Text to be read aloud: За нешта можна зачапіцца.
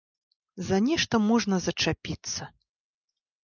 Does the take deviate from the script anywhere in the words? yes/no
no